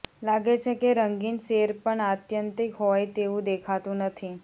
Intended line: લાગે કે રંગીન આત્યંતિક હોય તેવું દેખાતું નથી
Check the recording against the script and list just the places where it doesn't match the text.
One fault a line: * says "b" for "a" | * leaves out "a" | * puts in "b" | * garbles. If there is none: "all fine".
* puts in "છે"
* puts in "સેર પણ"